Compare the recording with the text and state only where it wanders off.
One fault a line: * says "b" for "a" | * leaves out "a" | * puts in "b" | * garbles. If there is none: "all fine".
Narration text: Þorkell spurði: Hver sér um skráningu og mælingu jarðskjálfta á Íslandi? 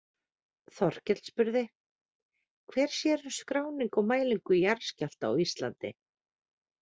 all fine